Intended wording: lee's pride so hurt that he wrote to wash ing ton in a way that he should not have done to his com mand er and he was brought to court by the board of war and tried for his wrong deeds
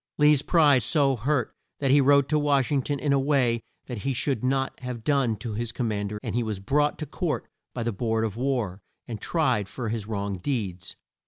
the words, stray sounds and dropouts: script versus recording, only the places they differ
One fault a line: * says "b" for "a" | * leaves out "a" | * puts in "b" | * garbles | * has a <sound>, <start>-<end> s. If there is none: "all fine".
all fine